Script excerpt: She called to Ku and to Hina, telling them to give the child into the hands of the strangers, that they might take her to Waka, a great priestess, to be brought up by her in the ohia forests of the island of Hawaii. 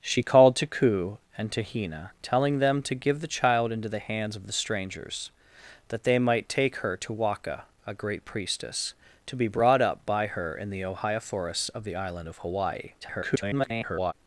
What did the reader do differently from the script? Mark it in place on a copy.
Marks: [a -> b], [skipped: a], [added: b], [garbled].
She called to Ku and to Hina, telling them to give the child into the hands of the strangers, that they might take her to Waka, a great priestess, to be brought up by her in the ohia forests of the island of Hawaii. [garbled]